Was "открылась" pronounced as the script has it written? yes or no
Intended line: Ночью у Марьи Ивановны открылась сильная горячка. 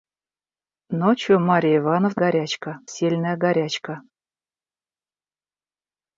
no